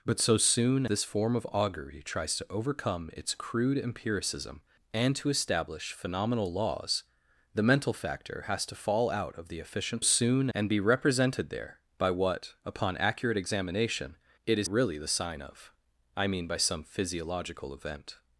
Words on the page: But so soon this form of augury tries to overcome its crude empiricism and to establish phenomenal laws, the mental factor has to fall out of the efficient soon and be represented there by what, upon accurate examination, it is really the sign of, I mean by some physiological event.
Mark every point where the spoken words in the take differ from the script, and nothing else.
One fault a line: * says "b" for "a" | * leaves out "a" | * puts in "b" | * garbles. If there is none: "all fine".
all fine